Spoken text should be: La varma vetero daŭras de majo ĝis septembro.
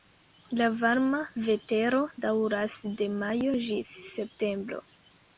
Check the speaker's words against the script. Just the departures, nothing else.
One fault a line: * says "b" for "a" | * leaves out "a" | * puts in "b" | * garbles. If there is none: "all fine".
all fine